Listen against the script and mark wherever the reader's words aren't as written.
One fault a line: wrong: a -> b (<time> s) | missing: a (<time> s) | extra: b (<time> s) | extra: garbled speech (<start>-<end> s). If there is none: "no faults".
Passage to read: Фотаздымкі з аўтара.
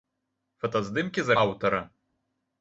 no faults